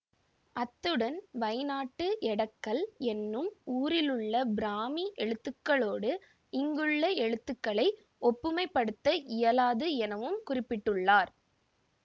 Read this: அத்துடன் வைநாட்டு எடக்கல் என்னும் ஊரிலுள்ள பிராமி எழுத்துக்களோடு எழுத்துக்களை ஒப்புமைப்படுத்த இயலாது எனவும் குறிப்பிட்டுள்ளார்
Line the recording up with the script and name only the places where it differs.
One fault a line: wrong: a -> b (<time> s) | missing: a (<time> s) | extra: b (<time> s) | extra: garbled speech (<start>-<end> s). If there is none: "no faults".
extra: இங்குள்ள (6.5 s)